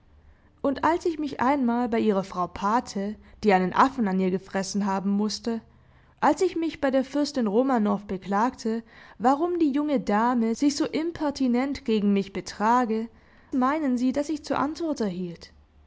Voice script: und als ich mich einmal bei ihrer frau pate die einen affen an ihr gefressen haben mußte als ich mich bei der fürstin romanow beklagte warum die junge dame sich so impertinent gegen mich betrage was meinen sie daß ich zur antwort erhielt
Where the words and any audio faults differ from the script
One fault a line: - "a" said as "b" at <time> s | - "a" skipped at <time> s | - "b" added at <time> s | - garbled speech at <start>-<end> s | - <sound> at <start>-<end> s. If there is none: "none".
- "was" skipped at 13.1 s